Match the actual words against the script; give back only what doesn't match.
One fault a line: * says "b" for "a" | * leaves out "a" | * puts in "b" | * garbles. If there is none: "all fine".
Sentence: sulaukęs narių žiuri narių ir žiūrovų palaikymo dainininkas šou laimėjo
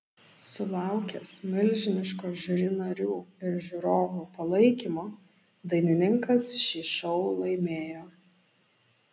* says "milžiniško" for "narių"
* puts in "šį"